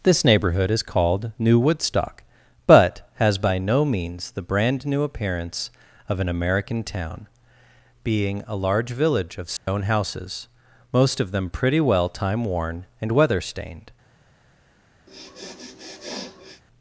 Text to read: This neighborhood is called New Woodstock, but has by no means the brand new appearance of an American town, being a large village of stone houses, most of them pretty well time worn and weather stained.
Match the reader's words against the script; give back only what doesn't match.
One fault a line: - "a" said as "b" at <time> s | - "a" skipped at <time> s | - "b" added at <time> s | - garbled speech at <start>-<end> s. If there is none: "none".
none